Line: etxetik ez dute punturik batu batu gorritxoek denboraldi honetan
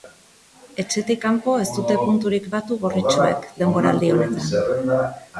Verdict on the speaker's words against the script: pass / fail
fail